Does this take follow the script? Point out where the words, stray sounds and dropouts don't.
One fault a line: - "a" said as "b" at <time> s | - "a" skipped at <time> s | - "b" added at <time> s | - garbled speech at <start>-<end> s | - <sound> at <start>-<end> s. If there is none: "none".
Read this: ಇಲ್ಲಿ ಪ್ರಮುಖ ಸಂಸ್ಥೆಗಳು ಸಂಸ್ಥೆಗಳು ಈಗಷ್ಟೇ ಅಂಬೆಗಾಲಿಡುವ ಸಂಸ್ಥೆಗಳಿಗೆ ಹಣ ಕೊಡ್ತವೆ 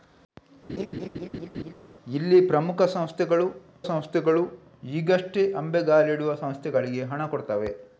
- laugh at 0.7-1.7 s